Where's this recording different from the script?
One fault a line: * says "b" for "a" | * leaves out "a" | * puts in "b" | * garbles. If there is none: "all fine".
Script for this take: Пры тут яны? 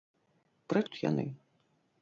all fine